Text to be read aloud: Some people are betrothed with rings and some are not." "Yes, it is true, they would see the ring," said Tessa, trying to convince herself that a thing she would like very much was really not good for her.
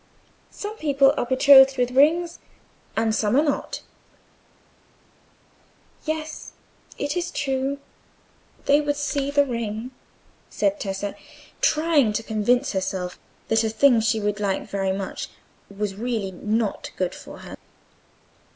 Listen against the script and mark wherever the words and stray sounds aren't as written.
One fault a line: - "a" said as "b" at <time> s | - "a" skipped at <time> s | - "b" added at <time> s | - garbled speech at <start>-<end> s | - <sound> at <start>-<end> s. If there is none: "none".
none